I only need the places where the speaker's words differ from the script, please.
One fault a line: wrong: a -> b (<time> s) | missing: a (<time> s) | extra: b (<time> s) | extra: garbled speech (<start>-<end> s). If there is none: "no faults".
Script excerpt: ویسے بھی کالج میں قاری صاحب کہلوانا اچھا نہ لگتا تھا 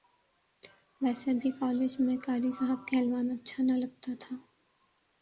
no faults